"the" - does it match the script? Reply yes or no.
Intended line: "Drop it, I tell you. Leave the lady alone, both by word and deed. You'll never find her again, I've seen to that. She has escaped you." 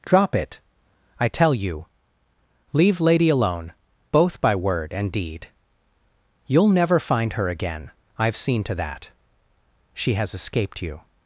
no